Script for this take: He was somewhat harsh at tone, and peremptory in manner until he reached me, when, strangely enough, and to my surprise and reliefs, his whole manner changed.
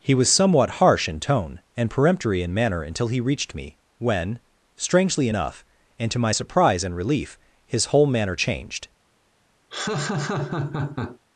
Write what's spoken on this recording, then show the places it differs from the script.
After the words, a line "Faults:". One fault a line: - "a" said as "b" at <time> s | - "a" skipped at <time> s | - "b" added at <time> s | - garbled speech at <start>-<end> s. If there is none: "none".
He was somewhat harsh in tone, and peremptory in manner until he reached me, when, strangely enough, and to my surprise and relief, his whole manner changed.
Faults:
- "at" said as "in" at 1.1 s
- "reliefs" said as "relief" at 6.9 s